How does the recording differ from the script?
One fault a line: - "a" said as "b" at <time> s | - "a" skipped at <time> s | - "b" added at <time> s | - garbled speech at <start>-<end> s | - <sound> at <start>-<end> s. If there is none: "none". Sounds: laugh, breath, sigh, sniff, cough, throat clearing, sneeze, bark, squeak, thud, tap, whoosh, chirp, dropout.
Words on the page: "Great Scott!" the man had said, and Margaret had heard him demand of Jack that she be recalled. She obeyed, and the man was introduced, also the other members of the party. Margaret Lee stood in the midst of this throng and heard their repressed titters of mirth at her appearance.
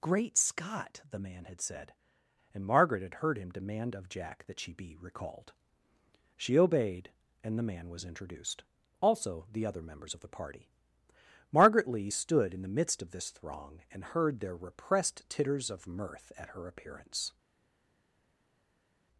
none